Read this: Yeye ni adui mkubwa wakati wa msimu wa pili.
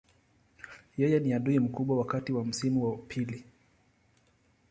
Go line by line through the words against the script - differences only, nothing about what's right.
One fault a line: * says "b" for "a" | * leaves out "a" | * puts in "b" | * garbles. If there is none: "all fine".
all fine